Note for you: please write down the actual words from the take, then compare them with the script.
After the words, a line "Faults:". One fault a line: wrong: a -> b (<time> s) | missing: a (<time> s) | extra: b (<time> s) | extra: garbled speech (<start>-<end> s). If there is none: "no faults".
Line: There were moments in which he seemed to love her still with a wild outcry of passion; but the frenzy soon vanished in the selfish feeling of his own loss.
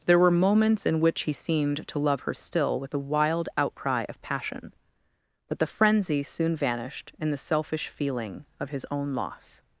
There were moments in which he seemed to love her still with a wild outcry of passion; but the frenzy soon vanished in the selfish feeling of his own loss.
Faults:
no faults